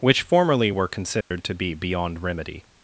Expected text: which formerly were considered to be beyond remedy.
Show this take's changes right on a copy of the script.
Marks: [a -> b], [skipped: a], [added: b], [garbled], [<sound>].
which formerly were considered [dropout] to be beyond remedy.